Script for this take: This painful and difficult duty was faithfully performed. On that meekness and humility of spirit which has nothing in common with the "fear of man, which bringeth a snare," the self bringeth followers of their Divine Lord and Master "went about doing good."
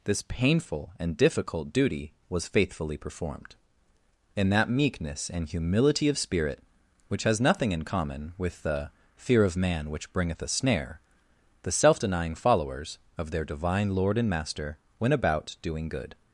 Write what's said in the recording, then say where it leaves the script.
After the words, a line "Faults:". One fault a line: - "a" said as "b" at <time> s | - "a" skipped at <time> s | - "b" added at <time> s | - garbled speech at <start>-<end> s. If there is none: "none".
This painful and difficult duty was faithfully performed. In that meekness and humility of spirit which has nothing in common with the "fear of man, which bringeth a snare," the self denying followers of their Divine Lord and Master "went about doing good."
Faults:
- "On" said as "In" at 4.3 s
- "bringeth" said as "denying" at 12.0 s